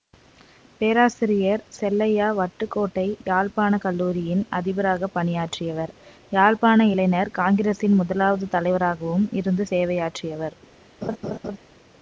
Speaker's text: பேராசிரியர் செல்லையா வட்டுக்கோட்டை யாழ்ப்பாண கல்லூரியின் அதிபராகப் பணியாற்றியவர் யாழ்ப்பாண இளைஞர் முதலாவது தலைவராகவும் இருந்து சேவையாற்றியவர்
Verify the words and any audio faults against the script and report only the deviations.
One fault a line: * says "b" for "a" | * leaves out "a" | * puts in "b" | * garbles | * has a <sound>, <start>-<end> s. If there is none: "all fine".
* puts in "காங்கிரசின்"
* has a laugh, 11.0-11.6 s